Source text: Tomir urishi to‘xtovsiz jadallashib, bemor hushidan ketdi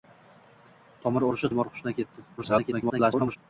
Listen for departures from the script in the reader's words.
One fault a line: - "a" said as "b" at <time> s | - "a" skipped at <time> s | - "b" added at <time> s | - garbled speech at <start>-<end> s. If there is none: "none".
- "to‘xtovsiz jadallashib" skipped at 1.5 s
- garbled speech at 2.4-3.4 s